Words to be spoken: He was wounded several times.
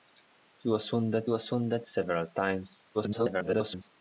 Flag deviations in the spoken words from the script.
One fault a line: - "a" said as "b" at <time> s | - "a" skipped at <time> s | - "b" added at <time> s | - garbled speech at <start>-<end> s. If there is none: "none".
- "was wounded" added at 1.3 s
- garbled speech at 2.9-3.9 s